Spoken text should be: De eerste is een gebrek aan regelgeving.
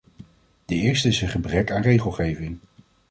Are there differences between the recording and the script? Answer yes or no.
no